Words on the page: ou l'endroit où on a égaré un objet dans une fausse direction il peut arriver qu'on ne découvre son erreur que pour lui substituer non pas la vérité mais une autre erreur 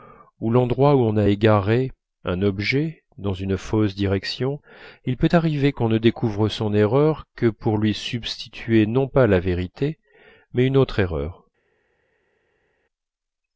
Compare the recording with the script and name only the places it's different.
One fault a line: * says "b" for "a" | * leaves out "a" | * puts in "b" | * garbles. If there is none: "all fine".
all fine